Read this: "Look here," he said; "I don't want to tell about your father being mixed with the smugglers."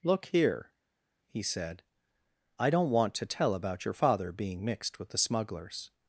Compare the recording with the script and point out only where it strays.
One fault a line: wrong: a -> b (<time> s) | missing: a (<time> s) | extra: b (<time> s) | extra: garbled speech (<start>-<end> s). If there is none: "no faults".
no faults